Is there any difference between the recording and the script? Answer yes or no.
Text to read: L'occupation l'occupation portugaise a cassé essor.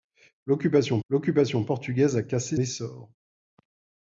no